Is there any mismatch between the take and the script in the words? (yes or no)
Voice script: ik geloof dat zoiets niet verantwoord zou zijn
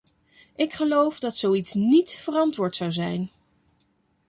no